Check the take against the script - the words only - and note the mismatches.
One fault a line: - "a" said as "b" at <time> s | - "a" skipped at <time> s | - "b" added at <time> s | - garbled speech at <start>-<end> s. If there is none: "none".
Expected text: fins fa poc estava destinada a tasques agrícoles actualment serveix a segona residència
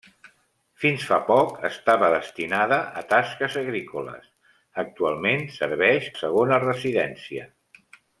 none